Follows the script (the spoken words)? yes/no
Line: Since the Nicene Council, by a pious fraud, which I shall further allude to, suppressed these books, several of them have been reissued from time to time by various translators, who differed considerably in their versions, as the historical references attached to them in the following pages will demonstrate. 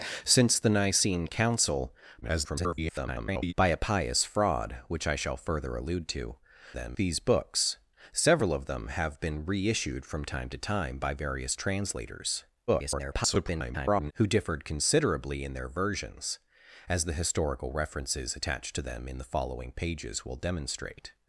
no